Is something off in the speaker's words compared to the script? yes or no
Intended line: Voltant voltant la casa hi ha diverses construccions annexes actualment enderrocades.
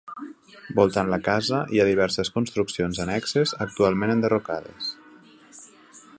yes